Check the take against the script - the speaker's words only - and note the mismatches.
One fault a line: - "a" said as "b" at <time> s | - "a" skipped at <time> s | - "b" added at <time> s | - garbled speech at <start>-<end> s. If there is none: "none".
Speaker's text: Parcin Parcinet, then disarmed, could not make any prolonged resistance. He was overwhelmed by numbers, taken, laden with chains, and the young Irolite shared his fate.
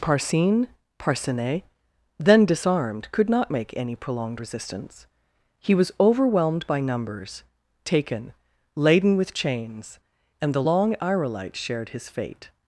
- "young" said as "long" at 10.6 s